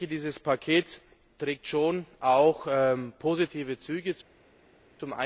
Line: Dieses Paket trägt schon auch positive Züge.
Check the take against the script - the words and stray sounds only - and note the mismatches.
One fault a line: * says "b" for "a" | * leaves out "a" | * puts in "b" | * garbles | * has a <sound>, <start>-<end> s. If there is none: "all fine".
all fine